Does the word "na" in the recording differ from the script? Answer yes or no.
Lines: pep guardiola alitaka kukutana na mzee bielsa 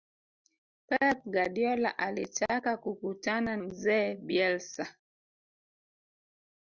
yes